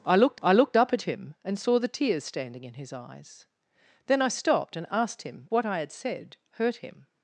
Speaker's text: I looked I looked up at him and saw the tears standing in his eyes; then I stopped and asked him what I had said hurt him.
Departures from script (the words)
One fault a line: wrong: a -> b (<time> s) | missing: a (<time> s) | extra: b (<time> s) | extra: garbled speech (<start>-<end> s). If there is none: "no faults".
no faults